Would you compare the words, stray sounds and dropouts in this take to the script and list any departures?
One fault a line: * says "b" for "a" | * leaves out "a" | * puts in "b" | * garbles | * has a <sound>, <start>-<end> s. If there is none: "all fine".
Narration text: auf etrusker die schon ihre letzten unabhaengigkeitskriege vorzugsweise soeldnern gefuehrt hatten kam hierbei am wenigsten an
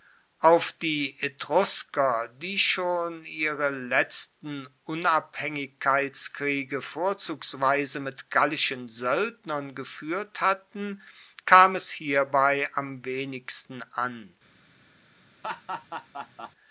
* puts in "die"
* puts in "mit gallischen"
* puts in "es"
* has a laugh, 15.4-16.5 s